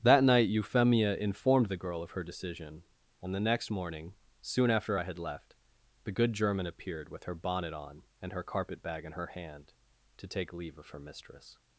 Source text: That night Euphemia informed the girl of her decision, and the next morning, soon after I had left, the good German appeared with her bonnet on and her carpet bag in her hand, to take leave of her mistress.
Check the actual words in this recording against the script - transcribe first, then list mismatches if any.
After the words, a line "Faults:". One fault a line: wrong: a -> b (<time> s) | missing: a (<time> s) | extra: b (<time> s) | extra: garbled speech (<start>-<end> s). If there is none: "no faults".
That night Euphemia informed the girl of her decision, and the next morning, soon after I had left, the good German appeared with her bonnet on and her carpet bag in her hand, to take leave of her mistress.
Faults:
no faults